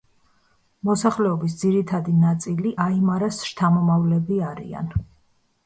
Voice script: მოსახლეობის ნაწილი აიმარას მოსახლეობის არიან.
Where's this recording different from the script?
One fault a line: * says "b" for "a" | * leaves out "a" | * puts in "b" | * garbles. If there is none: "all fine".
* puts in "ძირითადი"
* says "შთამომავლები" for "მოსახლეობის"